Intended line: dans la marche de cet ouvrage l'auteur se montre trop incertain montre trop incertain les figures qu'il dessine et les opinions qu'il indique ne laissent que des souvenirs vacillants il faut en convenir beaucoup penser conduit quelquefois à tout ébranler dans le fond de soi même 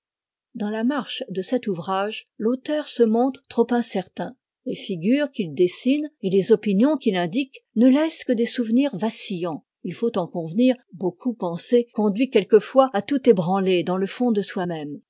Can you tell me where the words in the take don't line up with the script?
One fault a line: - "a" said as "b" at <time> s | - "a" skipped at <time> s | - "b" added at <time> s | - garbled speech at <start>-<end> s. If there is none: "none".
- "montre trop incertain" skipped at 4.3 s